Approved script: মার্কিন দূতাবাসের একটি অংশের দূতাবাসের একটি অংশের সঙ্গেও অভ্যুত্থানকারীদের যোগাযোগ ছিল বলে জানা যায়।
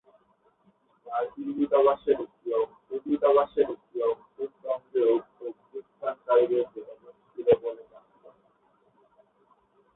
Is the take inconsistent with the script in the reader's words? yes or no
no